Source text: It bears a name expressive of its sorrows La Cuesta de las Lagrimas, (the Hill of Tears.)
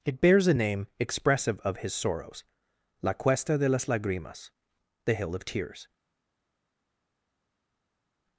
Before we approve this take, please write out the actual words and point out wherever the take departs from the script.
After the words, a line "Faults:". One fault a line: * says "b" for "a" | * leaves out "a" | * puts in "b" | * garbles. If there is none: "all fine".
It bears a name expressive of his sorrows La Cuesta de las Lagrimas, (the Hill of Tears.)
Faults:
* says "his" for "its"